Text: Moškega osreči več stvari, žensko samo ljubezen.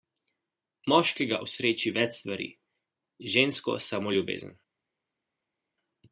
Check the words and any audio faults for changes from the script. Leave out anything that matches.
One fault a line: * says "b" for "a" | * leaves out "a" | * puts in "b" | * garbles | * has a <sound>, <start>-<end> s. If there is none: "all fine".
all fine